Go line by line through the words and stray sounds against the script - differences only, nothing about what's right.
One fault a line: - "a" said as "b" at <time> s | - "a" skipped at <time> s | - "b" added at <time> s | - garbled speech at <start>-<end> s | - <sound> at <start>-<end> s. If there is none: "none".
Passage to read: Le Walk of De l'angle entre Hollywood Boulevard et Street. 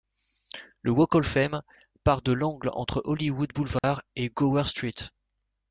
- "Fame part" added at 1.3 s
- dropout at 3.8-3.8 s
- "Gower" added at 4.3 s